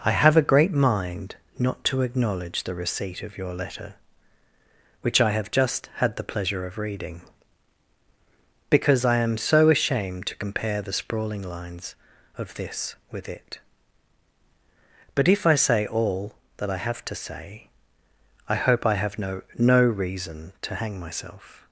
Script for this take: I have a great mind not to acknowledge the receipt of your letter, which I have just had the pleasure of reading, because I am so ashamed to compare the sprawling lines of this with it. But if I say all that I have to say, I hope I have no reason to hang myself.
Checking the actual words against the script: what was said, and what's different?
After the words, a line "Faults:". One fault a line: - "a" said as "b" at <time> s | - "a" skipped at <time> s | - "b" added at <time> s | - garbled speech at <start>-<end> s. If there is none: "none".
I have a great mind not to acknowledge the receipt of your letter, which I have just had the pleasure of reading, because I am so ashamed to compare the sprawling lines of this with it. But if I say all that I have to say, I hope I have no no reason to hang myself.
Faults:
- "no" added at 19.6 s